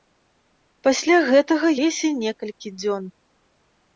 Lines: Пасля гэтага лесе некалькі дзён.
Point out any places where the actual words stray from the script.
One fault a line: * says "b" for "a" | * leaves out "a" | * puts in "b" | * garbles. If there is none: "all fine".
all fine